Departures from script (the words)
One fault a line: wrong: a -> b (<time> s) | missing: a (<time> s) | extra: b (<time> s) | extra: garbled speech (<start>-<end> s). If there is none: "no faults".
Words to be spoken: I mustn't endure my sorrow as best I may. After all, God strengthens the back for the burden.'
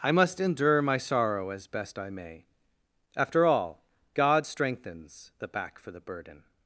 wrong: mustn't -> must (0.1 s)